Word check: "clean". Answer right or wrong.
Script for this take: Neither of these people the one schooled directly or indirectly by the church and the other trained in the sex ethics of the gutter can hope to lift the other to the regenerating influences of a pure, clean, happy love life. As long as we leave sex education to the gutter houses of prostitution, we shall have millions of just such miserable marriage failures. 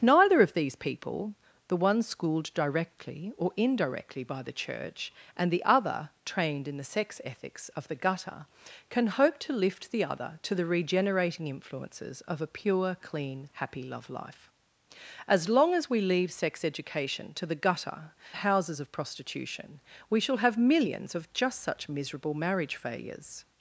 right